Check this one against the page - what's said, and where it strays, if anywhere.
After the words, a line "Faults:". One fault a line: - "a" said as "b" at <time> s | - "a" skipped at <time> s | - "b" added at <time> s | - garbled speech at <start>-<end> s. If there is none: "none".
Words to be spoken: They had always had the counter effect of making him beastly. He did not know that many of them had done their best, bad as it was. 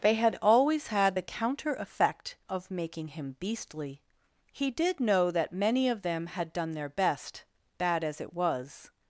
They had always had the counter effect of making him beastly. He did know that many of them had done their best, bad as it was.
Faults:
- "not" skipped at 5.0 s